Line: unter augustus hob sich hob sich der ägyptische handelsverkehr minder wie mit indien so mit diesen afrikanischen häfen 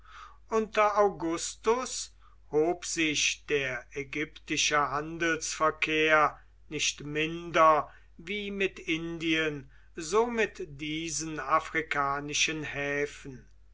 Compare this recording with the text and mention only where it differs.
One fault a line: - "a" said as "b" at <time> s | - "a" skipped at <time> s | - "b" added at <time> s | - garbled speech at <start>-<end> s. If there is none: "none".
- "hob sich" skipped at 3.5 s
- "nicht" added at 6.7 s